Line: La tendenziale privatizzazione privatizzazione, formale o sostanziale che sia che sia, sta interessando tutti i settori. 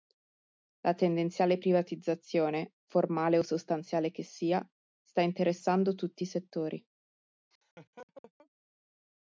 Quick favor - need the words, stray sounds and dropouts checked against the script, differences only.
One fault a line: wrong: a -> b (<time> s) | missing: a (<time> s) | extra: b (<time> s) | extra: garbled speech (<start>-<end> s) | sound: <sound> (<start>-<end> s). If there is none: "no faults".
missing: privatizzazione (2.7 s)
missing: che sia (4.6 s)
sound: laugh (7.5-8.5 s)